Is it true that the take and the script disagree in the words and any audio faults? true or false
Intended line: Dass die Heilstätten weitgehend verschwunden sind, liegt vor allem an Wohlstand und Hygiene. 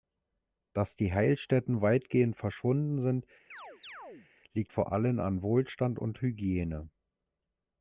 true